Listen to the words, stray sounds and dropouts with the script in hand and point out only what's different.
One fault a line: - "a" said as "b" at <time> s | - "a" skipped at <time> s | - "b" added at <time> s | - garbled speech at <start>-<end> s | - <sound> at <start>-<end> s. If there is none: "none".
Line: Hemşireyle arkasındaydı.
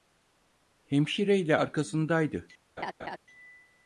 - laugh at 2.8-3.2 s